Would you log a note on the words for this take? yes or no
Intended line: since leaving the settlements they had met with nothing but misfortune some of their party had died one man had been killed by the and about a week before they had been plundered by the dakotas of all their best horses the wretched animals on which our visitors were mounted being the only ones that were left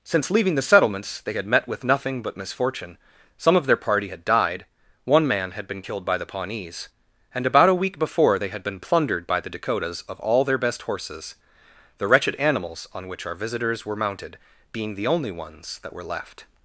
yes